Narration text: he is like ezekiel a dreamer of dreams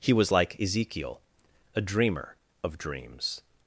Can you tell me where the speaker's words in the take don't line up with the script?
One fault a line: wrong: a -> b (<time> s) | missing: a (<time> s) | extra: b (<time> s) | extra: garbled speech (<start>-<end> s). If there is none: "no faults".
wrong: is -> was (0.1 s)